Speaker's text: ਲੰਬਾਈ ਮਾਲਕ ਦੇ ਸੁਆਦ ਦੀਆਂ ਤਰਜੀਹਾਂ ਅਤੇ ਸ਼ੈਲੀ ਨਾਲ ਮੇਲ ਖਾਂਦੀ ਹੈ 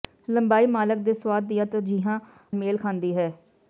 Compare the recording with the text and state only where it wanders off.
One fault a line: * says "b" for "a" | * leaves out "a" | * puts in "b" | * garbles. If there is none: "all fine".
* leaves out "ਅਤੇ ਸ਼ੈਲੀ ਨਾਲ"